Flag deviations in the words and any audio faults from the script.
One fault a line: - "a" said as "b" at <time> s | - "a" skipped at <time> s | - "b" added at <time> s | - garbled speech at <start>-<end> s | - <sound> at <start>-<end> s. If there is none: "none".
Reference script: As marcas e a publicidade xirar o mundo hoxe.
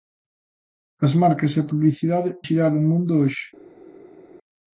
none